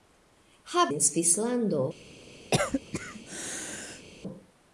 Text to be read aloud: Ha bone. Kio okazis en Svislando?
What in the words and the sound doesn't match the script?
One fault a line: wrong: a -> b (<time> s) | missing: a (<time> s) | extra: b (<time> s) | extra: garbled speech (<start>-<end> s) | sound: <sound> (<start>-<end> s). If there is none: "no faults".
missing: bone Kio okazis (0.8 s)
sound: cough (2.5-4.1 s)